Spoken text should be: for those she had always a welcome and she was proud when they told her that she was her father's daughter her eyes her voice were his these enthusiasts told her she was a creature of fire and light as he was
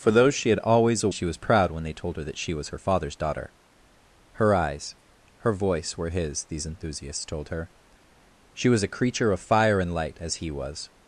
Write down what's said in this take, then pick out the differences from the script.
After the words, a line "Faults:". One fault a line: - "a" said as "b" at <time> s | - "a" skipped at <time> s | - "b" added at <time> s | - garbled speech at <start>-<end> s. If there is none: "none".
for those she had always a she was proud when they told her that she was her father's daughter her eyes her voice were his these enthusiasts told her she was a creature of fire and light as he was
Faults:
- "welcome and" skipped at 1.1 s